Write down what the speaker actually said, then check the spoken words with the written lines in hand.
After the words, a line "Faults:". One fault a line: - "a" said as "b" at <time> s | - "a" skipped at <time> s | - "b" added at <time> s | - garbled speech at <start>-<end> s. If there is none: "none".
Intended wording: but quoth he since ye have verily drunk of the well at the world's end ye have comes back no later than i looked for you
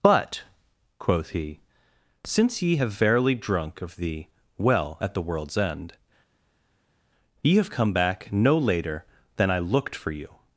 but quoth he since ye have verily drunk of the well at the world's end ye have come back no later than i looked for you
Faults:
- "comes" said as "come" at 7.7 s